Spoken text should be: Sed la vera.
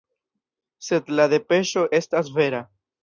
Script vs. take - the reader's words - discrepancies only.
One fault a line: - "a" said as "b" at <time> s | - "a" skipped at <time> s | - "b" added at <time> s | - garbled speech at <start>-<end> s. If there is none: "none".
- "depeŝo estas" added at 1.4 s